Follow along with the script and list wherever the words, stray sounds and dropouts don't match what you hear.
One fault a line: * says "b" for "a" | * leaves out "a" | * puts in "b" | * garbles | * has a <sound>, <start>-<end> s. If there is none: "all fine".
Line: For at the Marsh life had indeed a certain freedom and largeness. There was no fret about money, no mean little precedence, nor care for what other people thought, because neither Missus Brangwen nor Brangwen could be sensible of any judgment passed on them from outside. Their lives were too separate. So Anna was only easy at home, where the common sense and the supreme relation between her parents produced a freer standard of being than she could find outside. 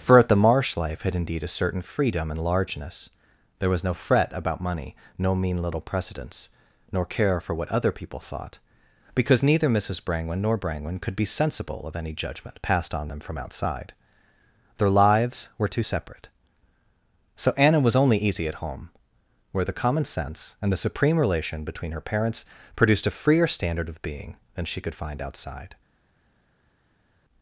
all fine